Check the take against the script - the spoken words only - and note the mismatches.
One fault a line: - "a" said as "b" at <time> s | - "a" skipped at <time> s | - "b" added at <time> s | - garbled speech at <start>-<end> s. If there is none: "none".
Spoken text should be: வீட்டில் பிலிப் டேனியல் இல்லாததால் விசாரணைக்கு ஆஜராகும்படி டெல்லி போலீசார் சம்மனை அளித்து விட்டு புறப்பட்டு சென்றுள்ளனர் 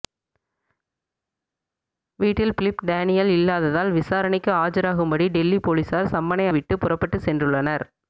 - "அளித்து" skipped at 6.5 s